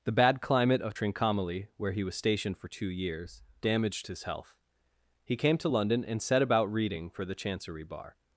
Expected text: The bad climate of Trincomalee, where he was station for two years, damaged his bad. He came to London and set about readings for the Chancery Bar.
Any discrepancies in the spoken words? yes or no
yes